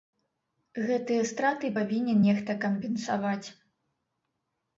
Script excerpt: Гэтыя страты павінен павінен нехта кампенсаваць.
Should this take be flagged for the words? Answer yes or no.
yes